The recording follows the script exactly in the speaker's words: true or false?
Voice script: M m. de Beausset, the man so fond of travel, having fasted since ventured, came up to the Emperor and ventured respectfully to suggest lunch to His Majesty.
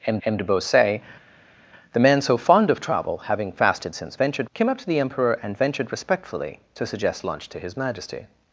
true